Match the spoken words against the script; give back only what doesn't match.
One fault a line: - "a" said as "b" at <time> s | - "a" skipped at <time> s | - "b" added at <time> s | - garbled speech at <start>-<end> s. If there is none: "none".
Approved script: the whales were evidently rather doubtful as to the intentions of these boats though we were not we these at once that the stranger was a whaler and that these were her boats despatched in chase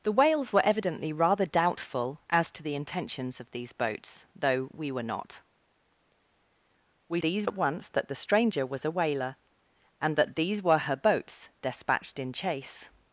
none